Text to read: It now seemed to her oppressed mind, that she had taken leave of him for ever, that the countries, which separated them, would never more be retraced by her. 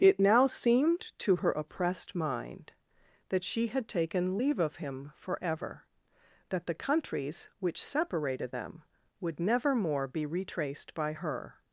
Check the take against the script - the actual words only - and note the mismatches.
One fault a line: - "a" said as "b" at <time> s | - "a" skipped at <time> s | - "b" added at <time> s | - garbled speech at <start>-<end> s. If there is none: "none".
none